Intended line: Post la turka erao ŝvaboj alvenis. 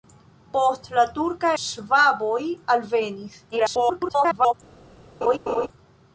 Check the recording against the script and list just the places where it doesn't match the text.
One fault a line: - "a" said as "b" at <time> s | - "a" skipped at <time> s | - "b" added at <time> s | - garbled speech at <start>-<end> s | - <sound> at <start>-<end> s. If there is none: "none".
- "erao" skipped at 1.5 s
- garbled speech at 3.5-4.5 s
- laugh at 5.2-5.7 s